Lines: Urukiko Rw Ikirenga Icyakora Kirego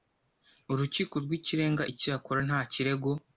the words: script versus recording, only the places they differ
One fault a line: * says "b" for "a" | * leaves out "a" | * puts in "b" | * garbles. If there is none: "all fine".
* puts in "Nta"